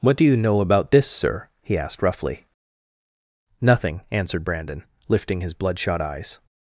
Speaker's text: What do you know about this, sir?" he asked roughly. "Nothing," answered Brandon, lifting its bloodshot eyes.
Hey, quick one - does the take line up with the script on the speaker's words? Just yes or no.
no